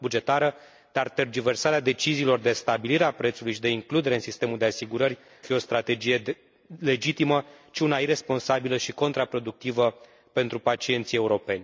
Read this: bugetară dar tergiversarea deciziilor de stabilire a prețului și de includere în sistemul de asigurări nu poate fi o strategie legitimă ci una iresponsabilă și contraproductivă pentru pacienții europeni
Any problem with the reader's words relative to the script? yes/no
yes